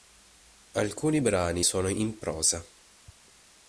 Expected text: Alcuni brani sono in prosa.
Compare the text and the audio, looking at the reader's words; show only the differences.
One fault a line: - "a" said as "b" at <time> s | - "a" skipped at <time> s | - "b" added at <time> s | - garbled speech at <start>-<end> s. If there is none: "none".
none